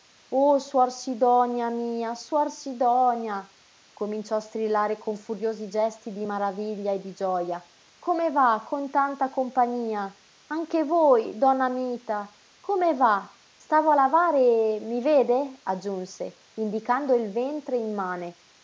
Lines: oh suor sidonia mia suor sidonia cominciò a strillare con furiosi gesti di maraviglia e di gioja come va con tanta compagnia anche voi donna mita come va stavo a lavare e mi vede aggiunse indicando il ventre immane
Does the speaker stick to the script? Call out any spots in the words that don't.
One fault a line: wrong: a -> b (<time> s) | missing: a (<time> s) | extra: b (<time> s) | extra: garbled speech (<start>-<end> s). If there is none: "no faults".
no faults